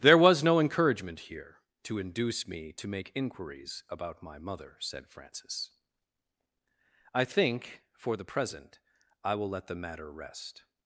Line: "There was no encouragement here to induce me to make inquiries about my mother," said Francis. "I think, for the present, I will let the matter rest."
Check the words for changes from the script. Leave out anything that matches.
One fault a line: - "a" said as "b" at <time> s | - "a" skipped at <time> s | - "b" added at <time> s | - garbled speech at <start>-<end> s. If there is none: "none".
none